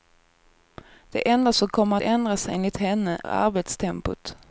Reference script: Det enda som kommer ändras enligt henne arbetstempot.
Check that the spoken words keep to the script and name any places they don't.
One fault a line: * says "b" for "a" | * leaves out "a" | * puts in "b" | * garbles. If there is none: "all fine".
all fine